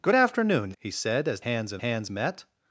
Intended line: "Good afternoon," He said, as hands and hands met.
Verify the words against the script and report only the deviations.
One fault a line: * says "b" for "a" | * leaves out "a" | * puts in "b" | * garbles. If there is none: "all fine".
all fine